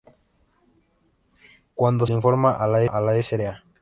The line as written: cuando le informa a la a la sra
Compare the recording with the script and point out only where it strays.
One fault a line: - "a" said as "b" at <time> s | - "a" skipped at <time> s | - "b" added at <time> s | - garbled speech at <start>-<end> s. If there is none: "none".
none